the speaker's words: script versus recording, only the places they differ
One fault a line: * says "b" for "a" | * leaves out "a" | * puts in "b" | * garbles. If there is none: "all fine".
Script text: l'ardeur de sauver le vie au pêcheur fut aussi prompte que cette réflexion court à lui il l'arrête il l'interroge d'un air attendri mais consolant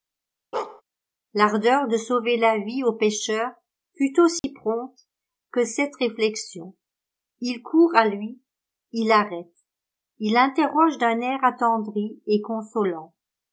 * says "la" for "le"
* puts in "il"
* says "et" for "mais"